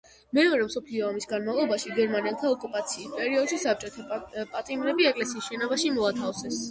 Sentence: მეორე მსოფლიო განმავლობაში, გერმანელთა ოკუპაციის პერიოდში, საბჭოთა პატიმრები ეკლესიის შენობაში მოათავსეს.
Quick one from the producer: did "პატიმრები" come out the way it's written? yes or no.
yes